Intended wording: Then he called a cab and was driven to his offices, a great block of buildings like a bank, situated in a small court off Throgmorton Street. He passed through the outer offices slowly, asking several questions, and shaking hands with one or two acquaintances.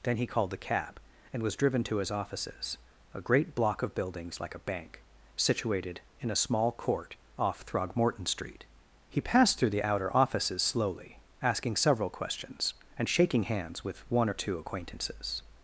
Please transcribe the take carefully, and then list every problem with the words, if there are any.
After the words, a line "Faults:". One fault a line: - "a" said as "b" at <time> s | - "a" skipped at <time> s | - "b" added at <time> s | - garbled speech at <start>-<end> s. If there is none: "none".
Then he called the cab and was driven to his offices, a great block of buildings like a bank, situated in a small court off Throgmorton Street. He passed through the outer offices slowly, asking several questions, and shaking hands with one or two acquaintances.
Faults:
- "a" said as "the" at 0.5 s